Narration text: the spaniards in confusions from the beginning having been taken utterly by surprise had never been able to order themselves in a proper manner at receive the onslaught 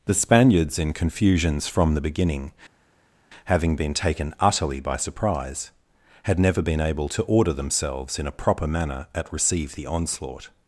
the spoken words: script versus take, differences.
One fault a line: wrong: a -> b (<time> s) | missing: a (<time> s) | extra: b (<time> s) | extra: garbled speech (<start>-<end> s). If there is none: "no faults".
no faults